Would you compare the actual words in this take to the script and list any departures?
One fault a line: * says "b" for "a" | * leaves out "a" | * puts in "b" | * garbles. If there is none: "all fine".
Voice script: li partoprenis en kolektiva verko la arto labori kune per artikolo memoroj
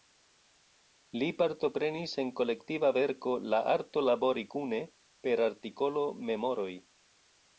all fine